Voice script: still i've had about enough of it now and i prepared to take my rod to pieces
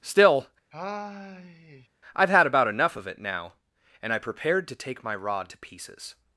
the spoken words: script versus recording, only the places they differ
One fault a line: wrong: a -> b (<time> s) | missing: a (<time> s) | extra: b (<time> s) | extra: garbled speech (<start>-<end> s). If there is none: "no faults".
no faults